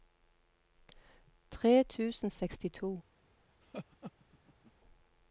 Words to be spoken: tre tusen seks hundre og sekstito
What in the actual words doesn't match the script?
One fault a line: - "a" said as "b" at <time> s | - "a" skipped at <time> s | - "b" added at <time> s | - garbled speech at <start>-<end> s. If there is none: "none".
- "seks hundre" skipped at 2.3 s